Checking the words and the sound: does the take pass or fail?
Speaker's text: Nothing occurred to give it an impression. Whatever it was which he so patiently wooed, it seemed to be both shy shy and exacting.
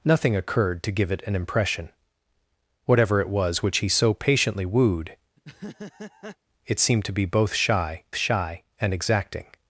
fail